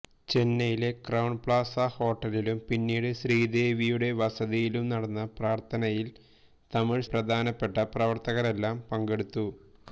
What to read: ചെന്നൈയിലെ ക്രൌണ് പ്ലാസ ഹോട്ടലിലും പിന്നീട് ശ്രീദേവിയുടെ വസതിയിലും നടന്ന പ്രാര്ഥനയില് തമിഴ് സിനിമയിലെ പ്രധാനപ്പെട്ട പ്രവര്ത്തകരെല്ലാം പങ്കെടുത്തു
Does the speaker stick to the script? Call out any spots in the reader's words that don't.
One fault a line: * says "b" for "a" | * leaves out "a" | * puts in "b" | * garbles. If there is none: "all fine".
* leaves out "സിനിമയിലെ"